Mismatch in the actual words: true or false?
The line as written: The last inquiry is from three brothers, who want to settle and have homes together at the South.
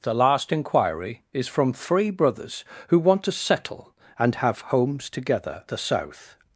true